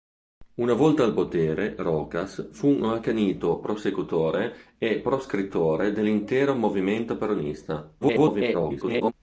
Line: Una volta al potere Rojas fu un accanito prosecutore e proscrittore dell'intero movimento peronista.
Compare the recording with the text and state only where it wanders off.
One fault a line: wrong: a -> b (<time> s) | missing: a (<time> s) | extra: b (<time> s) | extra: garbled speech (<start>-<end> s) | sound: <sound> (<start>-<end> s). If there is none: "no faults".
extra: garbled speech (8.0-9.1 s)